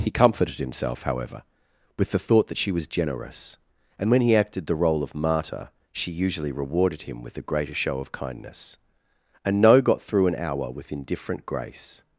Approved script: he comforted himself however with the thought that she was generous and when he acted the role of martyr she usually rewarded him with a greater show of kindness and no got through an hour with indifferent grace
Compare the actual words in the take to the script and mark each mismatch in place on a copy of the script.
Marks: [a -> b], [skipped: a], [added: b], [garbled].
he comforted himself however with the thought that she was generous and when he acted the role of martyr she usually rewarded him with a greater show of kindness and no got through an hour with indifferent grace